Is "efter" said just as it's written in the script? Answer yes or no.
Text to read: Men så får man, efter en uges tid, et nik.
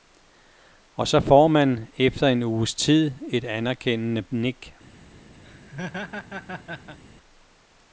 yes